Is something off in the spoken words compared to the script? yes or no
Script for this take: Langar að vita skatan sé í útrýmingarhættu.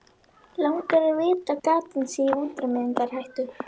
no